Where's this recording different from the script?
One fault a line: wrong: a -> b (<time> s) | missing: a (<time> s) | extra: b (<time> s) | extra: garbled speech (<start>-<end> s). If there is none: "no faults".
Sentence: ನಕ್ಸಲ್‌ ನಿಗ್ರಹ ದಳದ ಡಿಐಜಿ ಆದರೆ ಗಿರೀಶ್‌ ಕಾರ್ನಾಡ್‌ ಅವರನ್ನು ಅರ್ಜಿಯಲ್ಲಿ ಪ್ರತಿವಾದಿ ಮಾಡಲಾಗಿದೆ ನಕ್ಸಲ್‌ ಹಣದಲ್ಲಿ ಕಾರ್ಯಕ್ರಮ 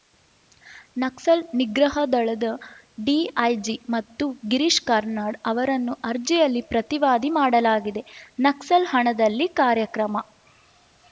wrong: ಆದರೆ -> ಮತ್ತು (3.9 s)